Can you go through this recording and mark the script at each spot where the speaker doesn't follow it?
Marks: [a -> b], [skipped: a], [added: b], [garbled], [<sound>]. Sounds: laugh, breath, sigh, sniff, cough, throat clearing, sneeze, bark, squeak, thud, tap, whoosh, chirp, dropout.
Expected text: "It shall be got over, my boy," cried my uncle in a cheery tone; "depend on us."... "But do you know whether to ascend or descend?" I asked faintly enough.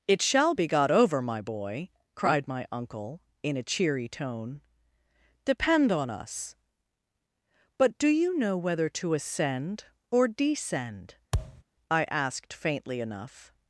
"It shall be got over, my boy," cried my uncle in a cheery tone; "depend on us."... "But do you know whether to ascend or descend?" [thud] I asked faintly enough.